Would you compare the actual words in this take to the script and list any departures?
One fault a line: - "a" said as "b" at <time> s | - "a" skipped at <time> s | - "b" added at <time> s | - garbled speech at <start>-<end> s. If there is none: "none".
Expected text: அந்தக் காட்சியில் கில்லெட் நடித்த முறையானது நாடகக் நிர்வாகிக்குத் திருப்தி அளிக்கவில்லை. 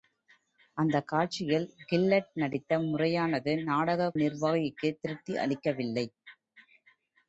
none